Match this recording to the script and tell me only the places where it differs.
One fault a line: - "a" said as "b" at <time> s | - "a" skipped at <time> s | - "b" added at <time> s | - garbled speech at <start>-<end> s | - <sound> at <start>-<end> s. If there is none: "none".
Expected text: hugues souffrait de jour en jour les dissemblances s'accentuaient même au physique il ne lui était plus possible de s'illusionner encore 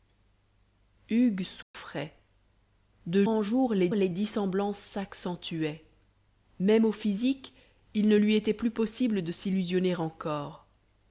- dropout at 1.6-1.7 s
- "jour" skipped at 3.2 s
- "les" added at 3.9 s